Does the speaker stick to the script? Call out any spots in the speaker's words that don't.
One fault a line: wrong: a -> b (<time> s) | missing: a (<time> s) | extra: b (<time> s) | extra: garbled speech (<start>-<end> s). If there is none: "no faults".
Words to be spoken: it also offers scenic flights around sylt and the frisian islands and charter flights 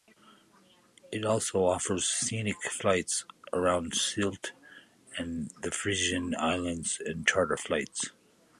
no faults